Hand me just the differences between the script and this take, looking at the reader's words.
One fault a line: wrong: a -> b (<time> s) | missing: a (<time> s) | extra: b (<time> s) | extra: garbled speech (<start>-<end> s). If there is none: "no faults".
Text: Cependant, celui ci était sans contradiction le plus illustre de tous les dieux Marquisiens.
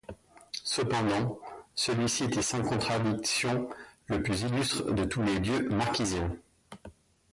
no faults